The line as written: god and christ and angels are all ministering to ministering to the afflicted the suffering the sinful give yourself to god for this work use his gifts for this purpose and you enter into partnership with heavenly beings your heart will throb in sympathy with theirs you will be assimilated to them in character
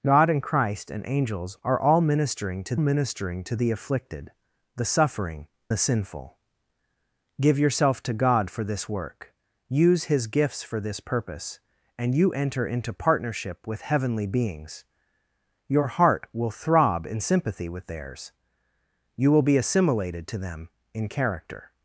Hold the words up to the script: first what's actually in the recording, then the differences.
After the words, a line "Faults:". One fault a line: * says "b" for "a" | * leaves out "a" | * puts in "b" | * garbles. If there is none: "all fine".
god and christ and angels are all ministering to ministering to the afflicted the suffering the sinful give yourself to god for this work use his gifts for this purpose and you enter into partnership with heavenly beings your heart will throb in sympathy with theirs you will be assimilated to them in character
Faults:
all fine